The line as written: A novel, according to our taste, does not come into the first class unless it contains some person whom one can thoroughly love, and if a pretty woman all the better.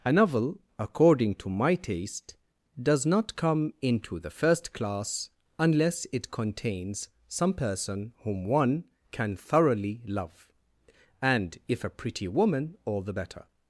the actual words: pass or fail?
fail